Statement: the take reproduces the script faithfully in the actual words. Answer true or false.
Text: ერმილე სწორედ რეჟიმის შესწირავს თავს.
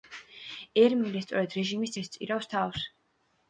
true